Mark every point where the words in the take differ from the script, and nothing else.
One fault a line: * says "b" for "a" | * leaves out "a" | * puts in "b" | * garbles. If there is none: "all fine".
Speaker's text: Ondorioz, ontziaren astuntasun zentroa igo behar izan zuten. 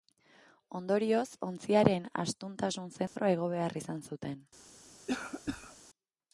all fine